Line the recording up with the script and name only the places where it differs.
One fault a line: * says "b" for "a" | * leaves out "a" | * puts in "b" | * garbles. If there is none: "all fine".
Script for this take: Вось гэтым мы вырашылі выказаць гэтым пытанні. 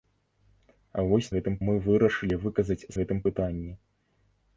all fine